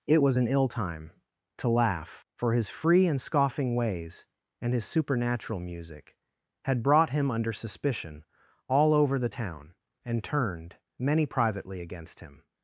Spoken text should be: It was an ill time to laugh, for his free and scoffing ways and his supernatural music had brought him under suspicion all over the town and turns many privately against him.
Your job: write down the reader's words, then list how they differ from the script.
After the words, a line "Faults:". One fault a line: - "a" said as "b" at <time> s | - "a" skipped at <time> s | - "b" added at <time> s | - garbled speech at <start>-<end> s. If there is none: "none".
It was an ill time to laugh, for his free and scoffing ways and his supernatural music had brought him under suspicion all over the town and turned many privately against him.
Faults:
- "turns" said as "turned" at 10.2 s